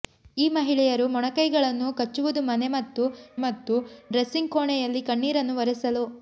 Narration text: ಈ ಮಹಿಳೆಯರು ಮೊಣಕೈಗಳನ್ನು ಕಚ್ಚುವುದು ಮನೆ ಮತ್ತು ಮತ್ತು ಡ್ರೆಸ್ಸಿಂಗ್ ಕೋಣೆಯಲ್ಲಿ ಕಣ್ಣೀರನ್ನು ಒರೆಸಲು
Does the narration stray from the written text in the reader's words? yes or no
no